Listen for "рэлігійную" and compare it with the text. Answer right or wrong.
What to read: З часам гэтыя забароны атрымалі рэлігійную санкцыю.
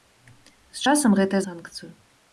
wrong